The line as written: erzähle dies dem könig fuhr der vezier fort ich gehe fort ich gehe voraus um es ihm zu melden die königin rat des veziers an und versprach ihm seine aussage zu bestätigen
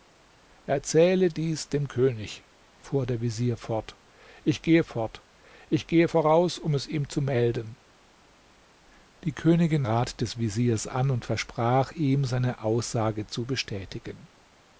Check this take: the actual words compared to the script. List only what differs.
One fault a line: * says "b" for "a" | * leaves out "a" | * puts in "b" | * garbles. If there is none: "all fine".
all fine